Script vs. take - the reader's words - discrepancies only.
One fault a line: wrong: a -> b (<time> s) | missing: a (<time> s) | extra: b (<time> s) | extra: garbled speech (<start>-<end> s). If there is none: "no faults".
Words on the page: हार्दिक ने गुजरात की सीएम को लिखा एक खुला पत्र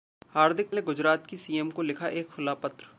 no faults